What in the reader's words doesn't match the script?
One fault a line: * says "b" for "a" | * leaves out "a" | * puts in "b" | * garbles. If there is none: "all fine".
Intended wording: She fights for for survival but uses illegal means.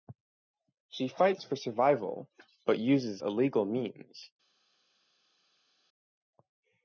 * leaves out "for"